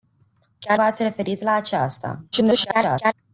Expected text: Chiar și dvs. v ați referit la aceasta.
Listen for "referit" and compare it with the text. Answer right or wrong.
right